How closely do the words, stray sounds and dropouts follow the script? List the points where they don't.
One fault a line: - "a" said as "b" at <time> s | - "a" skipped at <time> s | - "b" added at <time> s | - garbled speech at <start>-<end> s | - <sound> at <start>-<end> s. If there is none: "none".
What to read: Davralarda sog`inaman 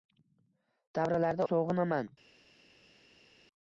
none